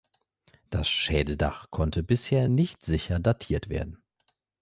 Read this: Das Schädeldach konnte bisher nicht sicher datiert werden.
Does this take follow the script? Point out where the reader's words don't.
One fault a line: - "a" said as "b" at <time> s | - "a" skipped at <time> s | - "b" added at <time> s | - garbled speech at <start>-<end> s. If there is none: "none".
none